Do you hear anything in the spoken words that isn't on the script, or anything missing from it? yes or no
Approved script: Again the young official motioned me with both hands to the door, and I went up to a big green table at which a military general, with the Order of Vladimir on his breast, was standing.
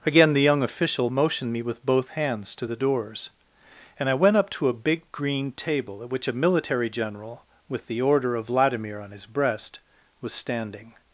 yes